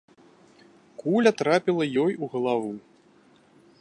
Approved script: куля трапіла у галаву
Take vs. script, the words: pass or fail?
fail